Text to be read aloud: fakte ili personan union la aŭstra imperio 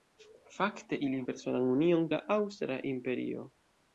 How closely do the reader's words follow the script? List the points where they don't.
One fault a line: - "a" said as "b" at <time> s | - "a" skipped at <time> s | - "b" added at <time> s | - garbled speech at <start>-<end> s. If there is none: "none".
none